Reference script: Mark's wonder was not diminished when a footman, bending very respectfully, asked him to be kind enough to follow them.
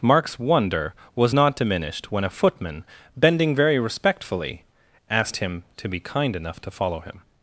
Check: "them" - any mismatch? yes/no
yes